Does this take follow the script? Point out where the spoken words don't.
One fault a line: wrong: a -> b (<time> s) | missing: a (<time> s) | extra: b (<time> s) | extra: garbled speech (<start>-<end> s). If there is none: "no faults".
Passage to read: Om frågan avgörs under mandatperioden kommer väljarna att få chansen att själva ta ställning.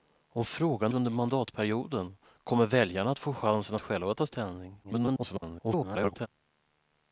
missing: avgörs (0.9 s)
extra: garbled speech (4.8-6.3 s)